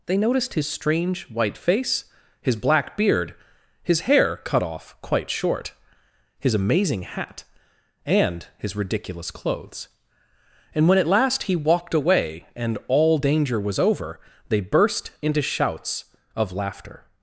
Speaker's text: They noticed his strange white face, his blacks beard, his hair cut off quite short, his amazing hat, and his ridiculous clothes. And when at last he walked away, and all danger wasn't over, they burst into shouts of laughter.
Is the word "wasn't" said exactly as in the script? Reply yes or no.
no